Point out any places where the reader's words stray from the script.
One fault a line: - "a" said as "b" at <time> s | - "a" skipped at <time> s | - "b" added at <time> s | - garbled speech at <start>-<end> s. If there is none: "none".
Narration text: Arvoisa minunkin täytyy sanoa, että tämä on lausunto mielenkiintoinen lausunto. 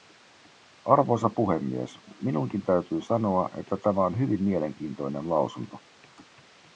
- "puhemies" added at 1.3 s
- "lausunto" said as "hyvin" at 4.2 s